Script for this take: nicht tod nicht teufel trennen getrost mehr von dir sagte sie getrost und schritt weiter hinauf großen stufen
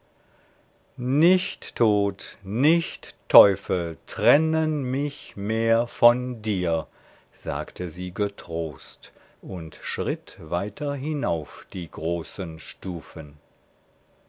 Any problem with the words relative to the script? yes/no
yes